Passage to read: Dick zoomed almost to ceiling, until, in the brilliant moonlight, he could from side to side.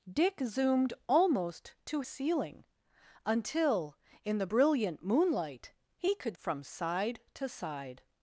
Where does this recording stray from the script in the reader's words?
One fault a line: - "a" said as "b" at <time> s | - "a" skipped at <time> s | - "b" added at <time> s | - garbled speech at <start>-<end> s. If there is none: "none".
none